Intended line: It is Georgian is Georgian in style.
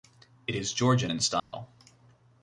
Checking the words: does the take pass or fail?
fail